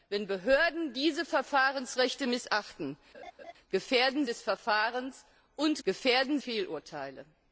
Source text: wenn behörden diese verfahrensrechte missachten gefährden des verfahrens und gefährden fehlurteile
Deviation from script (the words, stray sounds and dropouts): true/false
true